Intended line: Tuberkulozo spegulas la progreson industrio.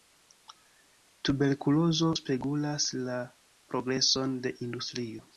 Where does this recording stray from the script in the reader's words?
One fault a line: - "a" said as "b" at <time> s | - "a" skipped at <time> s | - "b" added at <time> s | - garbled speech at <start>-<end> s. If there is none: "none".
- "de" added at 4.4 s